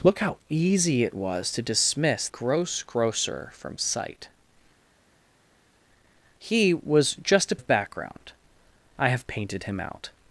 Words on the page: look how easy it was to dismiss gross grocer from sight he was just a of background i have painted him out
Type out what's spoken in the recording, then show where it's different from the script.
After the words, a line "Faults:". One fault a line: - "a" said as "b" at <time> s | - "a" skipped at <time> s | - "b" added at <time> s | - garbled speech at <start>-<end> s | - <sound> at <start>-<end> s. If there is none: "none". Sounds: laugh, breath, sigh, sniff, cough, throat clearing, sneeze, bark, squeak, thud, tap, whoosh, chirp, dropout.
look how easy it was to dismiss gross grocer from sight he was just a of background i have painted him out
Faults:
none